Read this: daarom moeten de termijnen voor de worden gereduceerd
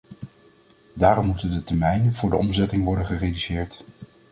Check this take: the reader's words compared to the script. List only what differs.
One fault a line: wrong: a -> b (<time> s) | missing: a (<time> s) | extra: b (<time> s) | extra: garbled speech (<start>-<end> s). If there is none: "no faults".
extra: omzetting (2.4 s)